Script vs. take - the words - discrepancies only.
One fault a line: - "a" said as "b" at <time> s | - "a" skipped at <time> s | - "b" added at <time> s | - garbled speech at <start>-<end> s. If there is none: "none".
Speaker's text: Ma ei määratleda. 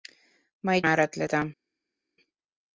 none